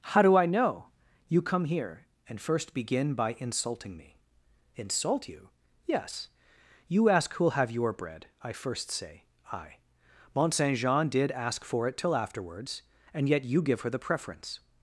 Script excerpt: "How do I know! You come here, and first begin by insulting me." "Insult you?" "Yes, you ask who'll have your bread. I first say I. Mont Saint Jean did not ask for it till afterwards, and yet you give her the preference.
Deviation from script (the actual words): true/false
true